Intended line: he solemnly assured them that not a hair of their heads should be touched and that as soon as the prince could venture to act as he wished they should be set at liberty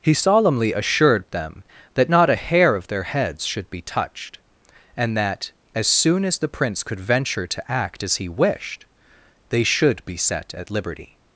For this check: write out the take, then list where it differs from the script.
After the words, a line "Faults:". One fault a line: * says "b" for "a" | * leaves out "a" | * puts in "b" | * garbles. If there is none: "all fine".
he solemnly assured them that not a hair of their heads should be touched and that as soon as the prince could venture to act as he wished they should be set at liberty
Faults:
all fine